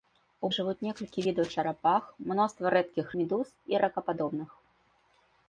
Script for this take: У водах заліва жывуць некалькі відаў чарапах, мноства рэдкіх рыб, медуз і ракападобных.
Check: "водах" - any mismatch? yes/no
yes